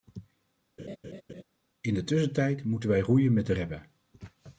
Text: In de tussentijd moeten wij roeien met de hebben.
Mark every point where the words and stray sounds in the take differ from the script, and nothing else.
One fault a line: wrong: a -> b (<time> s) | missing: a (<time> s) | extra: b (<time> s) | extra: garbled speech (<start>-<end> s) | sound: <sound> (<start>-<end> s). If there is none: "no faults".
sound: laugh (0.8-1.4 s)